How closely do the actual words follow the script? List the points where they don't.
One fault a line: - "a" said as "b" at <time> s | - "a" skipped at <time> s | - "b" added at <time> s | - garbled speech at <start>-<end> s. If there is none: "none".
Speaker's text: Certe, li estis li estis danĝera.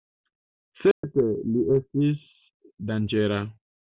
- "li estis" skipped at 2.2 s